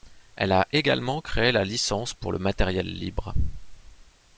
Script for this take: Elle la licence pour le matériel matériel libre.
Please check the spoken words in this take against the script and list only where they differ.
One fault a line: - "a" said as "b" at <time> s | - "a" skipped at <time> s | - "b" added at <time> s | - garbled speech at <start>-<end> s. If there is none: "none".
- "a également créé" added at 0.5 s
- "matériel" skipped at 2.9 s